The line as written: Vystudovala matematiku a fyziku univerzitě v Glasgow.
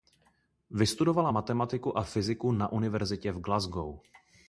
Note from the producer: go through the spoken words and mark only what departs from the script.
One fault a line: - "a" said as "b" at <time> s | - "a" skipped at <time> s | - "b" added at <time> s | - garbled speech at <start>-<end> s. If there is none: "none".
- "na" added at 2.5 s